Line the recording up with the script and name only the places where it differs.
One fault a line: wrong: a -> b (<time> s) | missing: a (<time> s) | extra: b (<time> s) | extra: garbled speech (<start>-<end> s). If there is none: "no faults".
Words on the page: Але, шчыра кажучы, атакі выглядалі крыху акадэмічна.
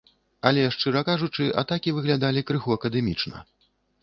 no faults